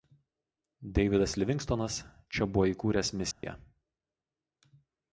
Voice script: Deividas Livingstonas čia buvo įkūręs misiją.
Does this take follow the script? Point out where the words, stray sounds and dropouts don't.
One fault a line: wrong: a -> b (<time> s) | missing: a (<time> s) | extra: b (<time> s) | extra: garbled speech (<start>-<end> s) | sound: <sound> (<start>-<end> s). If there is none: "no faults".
sound: dropout (3.3-3.4 s)